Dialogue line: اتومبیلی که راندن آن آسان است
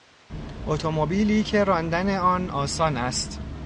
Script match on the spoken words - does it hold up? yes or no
yes